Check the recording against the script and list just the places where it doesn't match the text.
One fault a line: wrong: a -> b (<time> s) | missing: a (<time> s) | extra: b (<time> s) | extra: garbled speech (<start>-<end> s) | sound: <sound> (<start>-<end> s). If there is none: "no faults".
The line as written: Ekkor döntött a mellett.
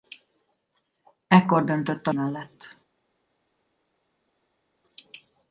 no faults